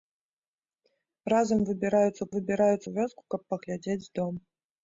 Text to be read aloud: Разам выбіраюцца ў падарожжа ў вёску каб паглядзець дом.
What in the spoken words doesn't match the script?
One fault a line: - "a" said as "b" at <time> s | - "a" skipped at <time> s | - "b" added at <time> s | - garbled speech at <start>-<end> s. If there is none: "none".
- "падарожжа" said as "выбіраюцца" at 2.4 s